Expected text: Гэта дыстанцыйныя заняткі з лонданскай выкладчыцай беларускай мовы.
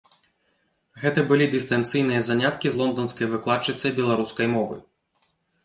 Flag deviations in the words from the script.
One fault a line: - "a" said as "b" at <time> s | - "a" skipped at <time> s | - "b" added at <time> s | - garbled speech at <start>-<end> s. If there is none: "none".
- "былі" added at 1.3 s